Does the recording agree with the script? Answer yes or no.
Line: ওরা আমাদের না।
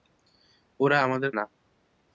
yes